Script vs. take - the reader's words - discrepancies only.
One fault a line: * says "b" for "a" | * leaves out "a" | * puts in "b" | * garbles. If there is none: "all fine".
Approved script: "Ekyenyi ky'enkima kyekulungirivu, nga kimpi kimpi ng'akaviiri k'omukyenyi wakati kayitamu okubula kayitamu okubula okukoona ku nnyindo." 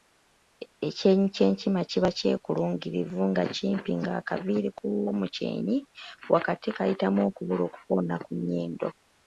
* puts in "kiba"
* leaves out "kimpi"
* leaves out "kayitamu okubula"